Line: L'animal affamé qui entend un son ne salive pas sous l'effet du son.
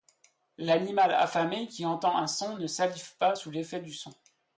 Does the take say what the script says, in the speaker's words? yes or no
yes